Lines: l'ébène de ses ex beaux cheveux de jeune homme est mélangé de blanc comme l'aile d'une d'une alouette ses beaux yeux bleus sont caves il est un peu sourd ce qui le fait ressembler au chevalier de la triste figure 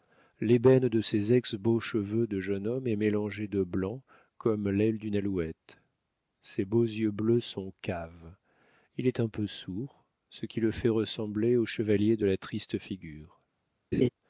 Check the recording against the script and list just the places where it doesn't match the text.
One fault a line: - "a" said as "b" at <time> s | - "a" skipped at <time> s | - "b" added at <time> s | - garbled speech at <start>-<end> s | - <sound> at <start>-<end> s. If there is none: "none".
- "d'une" skipped at 5.2 s
- laugh at 13.9-14.1 s